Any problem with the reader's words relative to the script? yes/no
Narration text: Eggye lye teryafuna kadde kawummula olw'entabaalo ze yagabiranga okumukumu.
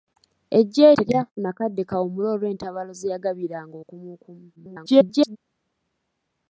yes